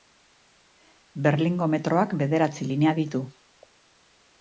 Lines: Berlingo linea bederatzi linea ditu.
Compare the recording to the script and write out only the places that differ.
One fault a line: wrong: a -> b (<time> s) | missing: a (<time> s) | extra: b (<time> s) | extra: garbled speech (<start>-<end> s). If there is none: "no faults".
wrong: linea -> metroak (1.8 s)